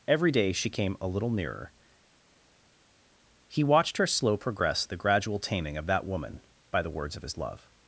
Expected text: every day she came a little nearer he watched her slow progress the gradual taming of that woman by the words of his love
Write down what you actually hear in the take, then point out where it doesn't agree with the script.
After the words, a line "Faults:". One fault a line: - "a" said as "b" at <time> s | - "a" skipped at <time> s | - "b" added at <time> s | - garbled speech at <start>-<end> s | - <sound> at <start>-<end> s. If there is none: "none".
every day she came a little nearer he watched her slow progress the gradual taming of that woman by the words of his love
Faults:
none